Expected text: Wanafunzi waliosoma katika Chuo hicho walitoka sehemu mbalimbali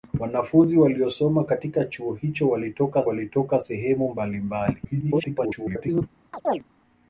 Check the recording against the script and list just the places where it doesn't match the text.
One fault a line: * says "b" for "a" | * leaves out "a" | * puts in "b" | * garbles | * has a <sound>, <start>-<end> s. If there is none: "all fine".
* puts in "walitoka"
* garbles
* has a chirp, 6.3-6.6 s